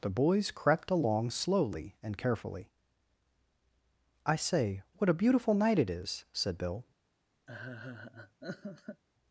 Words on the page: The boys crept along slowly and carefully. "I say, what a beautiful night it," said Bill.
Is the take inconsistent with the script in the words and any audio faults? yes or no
yes